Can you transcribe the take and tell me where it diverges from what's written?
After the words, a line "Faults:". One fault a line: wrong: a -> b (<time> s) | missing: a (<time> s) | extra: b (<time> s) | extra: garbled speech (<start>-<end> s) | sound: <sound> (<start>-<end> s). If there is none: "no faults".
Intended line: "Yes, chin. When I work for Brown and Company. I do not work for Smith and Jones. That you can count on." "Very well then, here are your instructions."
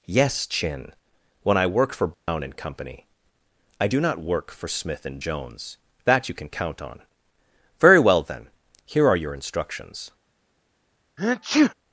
"Yes, chin. When I work for Brown and Company. I do not work for Smith and Jones. That you can count on." "Very well then, here are your instructions."
Faults:
sound: dropout (2.1-2.3 s)
sound: sneeze (11.2-11.7 s)